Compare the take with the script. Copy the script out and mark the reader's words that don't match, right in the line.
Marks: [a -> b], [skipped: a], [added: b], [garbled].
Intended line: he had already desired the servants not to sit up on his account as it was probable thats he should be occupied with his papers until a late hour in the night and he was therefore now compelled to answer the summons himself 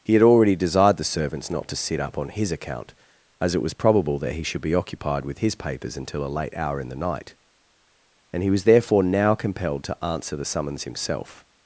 he had already desired the servants not to sit up on his account as it was probable [thats -> that] he should be occupied with his papers until a late hour in the night and he was therefore now compelled to answer the summons himself